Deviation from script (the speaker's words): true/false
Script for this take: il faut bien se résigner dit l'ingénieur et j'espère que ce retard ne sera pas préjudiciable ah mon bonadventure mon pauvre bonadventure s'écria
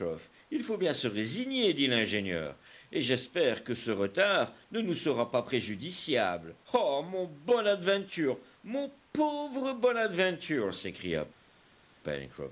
true